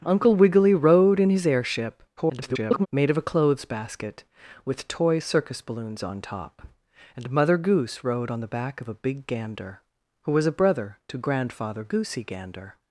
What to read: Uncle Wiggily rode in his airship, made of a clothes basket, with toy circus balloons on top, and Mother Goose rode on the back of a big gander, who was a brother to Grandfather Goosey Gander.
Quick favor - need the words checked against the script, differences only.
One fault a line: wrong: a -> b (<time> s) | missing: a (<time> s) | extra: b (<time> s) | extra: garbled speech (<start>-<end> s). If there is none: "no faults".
extra: garbled speech (2.2-2.9 s)